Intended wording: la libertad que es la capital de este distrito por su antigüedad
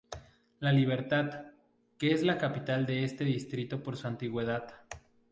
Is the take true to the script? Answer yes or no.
yes